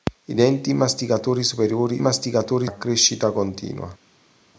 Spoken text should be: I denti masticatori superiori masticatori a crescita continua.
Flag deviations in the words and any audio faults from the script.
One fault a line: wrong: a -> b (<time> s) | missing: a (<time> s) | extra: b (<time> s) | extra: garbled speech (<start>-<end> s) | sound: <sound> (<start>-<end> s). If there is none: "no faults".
no faults